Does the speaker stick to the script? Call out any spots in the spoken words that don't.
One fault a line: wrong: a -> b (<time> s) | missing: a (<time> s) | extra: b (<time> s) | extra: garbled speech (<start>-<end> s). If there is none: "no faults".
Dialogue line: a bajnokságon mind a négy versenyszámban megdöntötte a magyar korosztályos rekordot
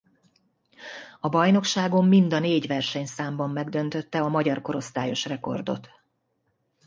no faults